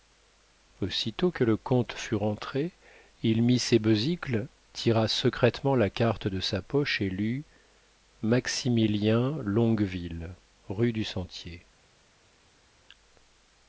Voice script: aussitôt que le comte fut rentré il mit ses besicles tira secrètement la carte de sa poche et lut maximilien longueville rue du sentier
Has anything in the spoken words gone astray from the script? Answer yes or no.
no